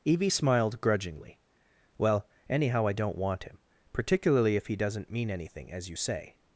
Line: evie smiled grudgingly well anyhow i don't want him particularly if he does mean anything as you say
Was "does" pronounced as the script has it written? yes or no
no